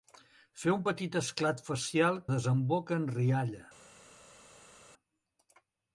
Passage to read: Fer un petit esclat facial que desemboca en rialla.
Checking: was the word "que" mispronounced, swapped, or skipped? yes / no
yes